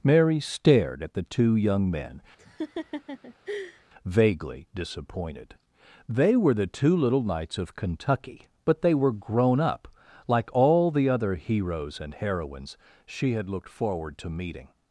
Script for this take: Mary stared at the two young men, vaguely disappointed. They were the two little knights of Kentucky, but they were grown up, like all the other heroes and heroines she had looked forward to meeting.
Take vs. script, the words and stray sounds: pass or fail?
fail